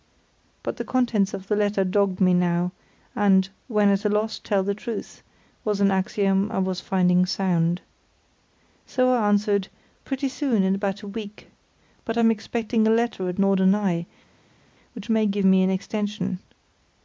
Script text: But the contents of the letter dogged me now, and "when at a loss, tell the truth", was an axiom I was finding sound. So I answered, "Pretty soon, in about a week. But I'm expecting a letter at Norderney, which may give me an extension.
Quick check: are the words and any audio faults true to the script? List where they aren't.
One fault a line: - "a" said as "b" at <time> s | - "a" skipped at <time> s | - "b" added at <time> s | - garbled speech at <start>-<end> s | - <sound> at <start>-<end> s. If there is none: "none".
none